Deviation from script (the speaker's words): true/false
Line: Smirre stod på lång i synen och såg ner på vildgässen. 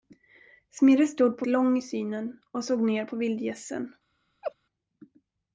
false